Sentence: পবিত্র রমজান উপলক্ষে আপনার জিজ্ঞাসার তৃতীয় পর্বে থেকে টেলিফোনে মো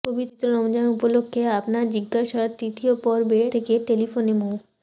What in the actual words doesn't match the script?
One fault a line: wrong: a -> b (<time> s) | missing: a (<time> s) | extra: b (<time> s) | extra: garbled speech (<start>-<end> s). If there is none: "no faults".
no faults